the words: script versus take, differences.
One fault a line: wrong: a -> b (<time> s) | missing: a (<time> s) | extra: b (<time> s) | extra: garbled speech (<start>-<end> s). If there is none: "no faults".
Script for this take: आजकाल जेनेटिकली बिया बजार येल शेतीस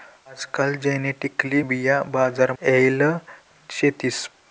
no faults